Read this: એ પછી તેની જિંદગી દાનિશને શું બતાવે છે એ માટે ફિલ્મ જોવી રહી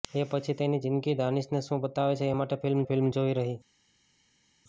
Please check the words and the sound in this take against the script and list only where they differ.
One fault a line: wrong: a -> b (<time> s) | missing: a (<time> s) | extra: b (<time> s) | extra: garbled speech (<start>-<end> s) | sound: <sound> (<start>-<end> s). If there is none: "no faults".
extra: ફિલ્મ (2.8 s)